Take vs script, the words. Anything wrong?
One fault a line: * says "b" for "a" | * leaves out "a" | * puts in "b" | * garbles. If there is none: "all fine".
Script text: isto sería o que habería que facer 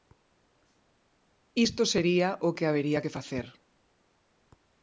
all fine